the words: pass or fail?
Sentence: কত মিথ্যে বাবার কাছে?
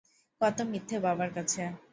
pass